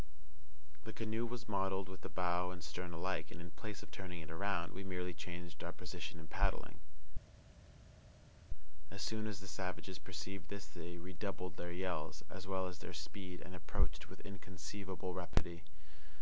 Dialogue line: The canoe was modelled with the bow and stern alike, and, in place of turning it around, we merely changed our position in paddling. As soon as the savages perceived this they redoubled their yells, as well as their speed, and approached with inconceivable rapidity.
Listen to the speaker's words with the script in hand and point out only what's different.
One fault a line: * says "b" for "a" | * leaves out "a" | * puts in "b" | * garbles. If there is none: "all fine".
all fine